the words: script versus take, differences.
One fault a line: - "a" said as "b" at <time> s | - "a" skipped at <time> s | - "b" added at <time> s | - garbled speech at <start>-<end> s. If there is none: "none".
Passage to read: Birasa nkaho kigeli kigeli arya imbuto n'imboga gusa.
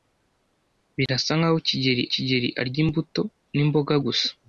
none